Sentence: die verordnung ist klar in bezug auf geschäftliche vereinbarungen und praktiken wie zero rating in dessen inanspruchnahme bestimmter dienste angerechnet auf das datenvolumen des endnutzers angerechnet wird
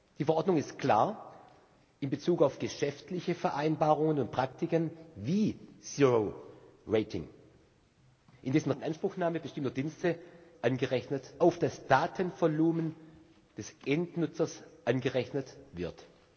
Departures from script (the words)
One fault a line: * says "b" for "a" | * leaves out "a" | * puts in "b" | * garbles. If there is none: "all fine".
all fine